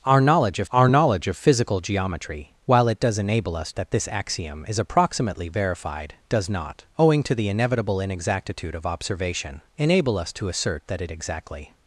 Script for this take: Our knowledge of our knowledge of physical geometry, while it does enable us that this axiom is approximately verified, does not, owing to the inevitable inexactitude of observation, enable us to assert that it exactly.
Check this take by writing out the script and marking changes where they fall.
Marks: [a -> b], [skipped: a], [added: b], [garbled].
Our knowledge of our knowledge of physical geometry, while it does enable us that this axiom is approximately verified, does not, owing to the inevitable inexactitude of observation, enable us to assert that it exactly.